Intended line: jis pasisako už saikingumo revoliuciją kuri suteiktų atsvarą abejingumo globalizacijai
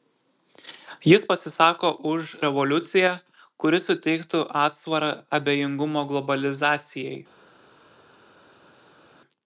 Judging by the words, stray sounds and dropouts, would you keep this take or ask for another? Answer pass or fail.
fail